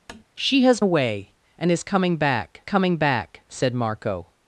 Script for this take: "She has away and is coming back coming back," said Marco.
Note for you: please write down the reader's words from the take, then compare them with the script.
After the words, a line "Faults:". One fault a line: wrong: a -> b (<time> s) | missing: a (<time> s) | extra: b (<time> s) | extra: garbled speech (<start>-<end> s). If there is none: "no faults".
"She has away and is coming back coming back," said Marco.
Faults:
no faults